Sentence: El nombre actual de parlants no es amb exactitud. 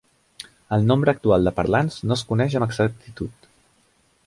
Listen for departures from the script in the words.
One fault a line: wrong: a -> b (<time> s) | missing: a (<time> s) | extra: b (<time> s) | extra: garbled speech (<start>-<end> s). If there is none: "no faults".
extra: coneix (2.3 s)